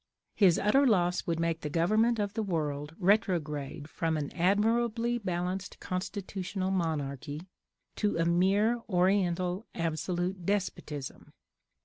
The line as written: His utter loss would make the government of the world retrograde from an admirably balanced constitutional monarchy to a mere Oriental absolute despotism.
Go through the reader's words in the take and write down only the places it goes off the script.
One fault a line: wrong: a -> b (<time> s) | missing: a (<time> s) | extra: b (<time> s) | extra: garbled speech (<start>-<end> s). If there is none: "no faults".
no faults